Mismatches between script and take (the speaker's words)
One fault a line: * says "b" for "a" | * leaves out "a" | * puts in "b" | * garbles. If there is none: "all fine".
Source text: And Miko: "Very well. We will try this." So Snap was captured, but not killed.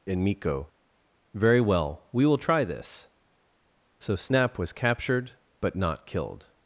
all fine